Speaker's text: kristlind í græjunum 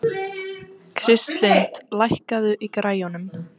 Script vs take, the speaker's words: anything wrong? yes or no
yes